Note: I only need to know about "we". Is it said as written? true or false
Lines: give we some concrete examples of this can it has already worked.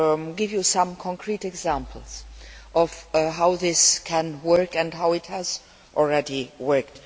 false